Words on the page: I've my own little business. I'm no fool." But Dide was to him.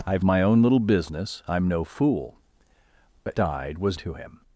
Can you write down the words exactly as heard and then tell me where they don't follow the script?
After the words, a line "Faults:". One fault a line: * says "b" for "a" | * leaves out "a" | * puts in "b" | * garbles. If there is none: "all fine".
I've my own little business. I'm no fool." But Dide was to him.
Faults:
all fine